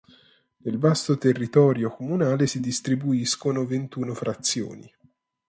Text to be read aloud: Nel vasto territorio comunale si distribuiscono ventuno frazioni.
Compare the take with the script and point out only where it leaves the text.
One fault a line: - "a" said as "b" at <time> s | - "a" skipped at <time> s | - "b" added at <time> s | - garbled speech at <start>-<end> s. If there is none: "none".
none